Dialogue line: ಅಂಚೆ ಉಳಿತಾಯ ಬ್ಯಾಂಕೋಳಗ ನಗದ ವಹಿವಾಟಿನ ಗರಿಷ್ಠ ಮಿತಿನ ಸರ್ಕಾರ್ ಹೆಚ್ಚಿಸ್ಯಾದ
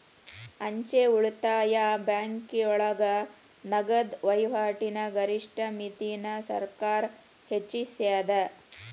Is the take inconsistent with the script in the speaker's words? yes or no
no